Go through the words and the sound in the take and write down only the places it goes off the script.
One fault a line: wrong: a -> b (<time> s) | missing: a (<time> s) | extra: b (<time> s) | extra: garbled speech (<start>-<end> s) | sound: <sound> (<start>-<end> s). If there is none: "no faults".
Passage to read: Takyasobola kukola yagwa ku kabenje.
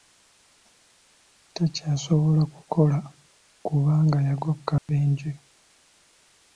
extra: kubanga (3.6 s)
sound: dropout (4.8-4.9 s)